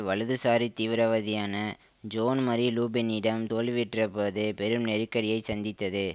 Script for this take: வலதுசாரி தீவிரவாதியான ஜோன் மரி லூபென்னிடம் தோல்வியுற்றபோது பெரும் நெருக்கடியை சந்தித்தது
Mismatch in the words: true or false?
false